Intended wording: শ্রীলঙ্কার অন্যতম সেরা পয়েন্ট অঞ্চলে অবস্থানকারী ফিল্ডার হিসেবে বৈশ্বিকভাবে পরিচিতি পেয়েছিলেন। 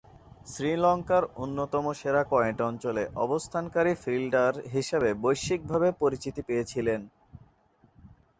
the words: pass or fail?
pass